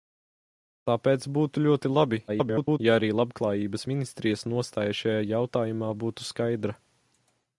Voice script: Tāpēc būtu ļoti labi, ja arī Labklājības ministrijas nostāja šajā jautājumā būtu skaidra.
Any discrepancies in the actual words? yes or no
yes